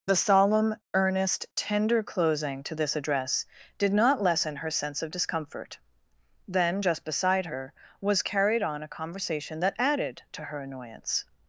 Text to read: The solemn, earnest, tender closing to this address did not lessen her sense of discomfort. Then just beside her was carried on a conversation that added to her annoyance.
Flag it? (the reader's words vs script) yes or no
no